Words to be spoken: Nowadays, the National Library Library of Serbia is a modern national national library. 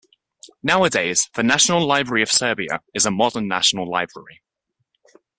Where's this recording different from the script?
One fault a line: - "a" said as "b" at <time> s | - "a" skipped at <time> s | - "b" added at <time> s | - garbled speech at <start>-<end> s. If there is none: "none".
- "Library" skipped at 2.2 s
- "national" skipped at 3.9 s